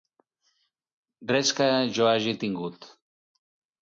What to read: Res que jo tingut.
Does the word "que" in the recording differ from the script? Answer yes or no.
no